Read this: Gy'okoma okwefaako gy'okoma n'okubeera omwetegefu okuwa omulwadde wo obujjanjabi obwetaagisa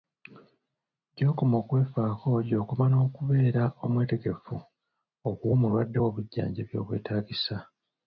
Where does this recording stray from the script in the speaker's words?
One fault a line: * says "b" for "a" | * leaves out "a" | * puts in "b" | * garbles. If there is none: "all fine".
all fine